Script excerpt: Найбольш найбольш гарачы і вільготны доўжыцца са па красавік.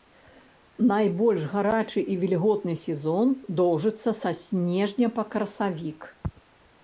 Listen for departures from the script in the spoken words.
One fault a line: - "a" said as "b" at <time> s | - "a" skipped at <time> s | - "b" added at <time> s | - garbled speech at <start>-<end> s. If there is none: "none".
- "найбольш" skipped at 1.4 s
- "сезон" added at 2.9 s
- "снежня" added at 4.4 s